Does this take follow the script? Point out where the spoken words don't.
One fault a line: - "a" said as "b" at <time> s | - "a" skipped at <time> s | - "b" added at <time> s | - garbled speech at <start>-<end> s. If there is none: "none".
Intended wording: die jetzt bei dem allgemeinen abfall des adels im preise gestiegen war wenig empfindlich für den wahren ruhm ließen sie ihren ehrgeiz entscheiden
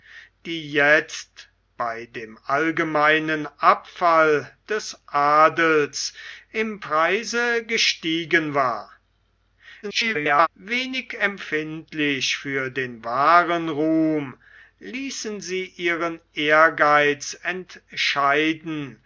- garbled speech at 9.8-10.5 s